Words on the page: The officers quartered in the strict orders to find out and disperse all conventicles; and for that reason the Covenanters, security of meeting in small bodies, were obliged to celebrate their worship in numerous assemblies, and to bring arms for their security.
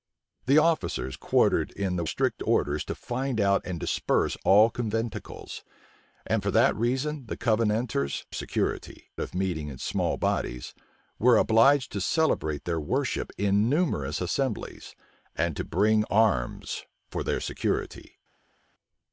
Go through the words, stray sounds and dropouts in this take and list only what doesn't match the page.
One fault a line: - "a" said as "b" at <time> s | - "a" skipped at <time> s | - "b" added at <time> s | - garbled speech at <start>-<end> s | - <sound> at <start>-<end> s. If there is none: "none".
none